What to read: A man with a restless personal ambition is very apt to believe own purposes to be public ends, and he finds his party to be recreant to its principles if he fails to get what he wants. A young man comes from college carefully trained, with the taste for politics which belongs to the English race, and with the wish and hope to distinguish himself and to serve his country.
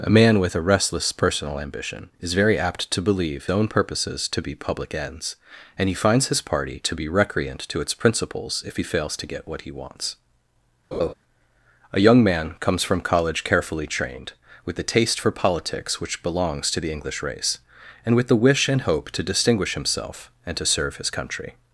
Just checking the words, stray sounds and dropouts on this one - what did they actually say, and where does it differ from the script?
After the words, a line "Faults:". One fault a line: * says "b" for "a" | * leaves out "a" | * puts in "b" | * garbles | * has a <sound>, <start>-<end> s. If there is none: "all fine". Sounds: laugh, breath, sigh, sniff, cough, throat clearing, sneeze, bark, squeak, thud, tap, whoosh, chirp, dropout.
A man with a restless personal ambition is very apt to believe own purposes to be public ends, and he finds his party to be recreant to its principles if he fails to get what he wants. A young man comes from college carefully trained, with the taste for politics which belongs to the English race, and with the wish and hope to distinguish himself and to serve his country.
Faults:
* has a laugh, 10.9-11.1 s